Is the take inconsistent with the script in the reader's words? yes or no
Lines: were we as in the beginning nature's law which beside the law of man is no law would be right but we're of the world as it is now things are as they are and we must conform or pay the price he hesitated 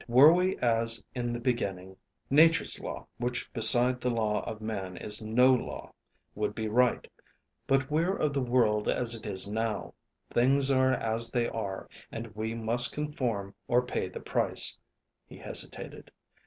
no